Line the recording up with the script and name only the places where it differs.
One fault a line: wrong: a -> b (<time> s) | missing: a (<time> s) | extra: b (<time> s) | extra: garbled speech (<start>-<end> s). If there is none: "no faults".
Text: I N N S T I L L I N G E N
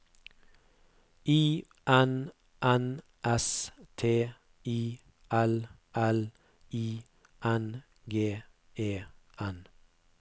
no faults